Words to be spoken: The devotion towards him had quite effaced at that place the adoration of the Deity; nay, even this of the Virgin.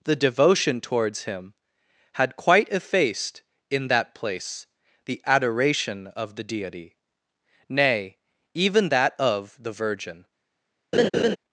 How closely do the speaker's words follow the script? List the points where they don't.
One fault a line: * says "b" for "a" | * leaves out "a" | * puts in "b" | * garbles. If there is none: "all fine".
* says "in" for "at"
* says "that" for "this"